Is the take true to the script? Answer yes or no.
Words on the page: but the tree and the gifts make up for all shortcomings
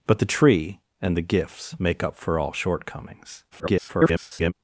no